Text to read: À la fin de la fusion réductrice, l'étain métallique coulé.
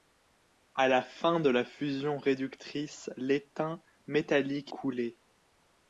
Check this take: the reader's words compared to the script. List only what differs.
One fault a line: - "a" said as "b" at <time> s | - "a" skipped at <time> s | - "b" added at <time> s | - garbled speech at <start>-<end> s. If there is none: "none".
none